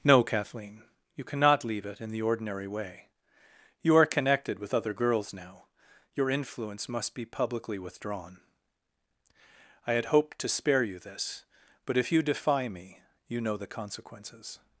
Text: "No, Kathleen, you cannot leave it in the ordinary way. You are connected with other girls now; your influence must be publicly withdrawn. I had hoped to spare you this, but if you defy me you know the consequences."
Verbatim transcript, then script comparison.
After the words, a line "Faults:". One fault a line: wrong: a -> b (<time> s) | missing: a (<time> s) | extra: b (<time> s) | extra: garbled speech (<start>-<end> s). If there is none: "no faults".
"No, Kathleen, you cannot leave it in the ordinary way. You are connected with other girls now; your influence must be publicly withdrawn. I had hoped to spare you this, but if you defy me you know the consequences."
Faults:
no faults